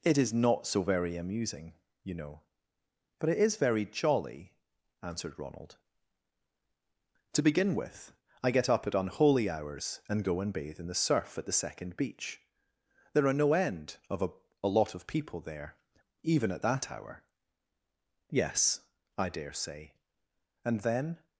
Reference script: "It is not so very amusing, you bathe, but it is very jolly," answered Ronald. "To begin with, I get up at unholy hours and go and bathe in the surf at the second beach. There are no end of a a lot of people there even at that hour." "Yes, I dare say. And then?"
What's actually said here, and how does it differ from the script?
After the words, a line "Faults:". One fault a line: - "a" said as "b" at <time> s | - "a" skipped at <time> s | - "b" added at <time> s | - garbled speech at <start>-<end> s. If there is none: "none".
"It is not so very amusing, you know, but it is very jolly," answered Ronald. "To begin with, I get up at unholy hours and go and bathe in the surf at the second beach. There are no end of a a lot of people there even at that hour." "Yes, I dare say. And then?"
Faults:
- "bathe" said as "know" at 2.1 s